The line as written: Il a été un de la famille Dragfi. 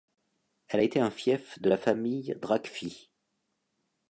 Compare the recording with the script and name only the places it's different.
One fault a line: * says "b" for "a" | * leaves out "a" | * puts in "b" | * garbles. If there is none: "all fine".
* says "Elle" for "Il"
* puts in "fief"